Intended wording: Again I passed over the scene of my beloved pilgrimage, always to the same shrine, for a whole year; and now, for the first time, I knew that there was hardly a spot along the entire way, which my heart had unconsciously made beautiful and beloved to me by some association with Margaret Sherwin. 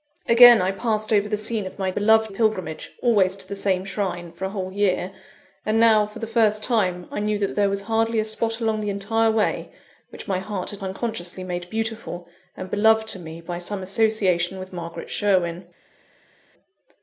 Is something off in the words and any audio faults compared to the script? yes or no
no